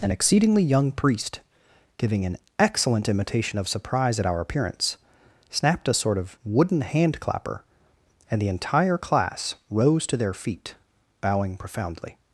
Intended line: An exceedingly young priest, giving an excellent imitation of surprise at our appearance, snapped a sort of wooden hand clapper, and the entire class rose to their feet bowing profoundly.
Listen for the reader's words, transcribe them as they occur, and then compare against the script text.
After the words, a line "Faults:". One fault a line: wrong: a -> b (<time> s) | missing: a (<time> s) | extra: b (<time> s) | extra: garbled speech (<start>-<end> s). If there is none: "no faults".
An exceedingly young priest, giving an excellent imitation of surprise at our appearance, snapped a sort of wooden hand clapper, and the entire class rose to their feet bowing profoundly.
Faults:
no faults